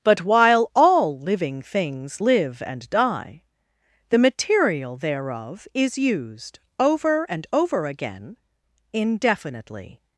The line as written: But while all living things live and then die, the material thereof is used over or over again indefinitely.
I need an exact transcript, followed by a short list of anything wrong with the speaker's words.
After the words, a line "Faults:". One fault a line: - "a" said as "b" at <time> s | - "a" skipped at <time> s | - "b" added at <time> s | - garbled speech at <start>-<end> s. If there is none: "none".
But while all living things live and die, the material thereof is used over and over again indefinitely.
Faults:
- "then" skipped at 2.9 s
- "or" said as "and" at 7.3 s